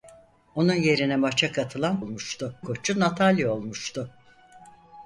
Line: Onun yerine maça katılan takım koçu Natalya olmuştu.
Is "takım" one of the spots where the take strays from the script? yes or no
yes